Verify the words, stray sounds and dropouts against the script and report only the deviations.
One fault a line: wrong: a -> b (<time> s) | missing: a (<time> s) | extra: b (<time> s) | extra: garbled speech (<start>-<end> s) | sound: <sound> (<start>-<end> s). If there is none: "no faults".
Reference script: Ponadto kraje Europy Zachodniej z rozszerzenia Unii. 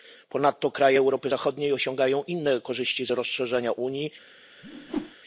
extra: osiągają inne korzyści (1.7 s)
sound: whoosh (4.6-5.2 s)